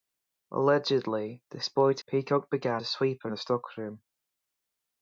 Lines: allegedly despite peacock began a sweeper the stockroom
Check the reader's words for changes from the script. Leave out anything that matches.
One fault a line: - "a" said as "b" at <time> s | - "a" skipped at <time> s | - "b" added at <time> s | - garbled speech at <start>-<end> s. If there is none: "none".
none